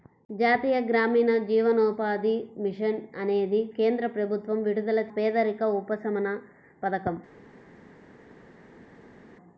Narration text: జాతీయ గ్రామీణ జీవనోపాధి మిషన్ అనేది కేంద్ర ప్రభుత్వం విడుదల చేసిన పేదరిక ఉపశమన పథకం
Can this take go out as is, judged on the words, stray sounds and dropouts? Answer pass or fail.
fail